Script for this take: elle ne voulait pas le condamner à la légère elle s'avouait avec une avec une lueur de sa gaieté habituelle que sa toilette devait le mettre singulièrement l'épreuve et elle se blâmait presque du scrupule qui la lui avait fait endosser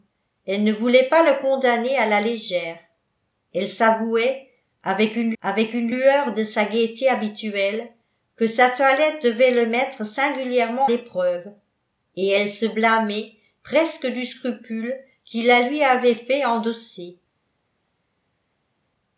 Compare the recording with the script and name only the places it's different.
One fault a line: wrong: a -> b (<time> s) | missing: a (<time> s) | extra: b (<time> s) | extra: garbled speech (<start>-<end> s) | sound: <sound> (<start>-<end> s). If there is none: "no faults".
no faults